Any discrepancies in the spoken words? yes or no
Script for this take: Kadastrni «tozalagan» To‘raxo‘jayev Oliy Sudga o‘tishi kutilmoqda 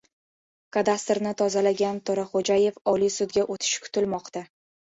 no